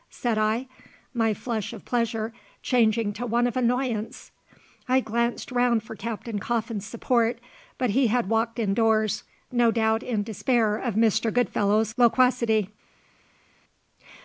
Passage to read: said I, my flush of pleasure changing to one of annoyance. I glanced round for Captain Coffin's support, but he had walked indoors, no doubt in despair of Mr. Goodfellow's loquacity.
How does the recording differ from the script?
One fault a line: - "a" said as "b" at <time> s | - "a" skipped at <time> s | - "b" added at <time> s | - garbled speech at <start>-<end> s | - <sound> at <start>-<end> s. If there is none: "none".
none